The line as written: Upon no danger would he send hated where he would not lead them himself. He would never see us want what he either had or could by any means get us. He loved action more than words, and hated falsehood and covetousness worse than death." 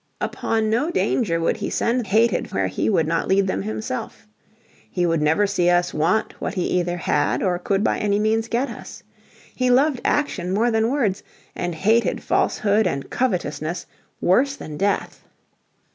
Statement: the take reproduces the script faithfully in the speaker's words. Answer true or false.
true